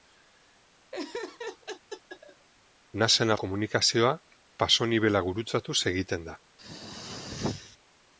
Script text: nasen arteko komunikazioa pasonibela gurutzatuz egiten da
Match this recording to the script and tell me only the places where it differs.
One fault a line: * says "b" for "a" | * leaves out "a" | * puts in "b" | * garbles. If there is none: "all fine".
* leaves out "arteko"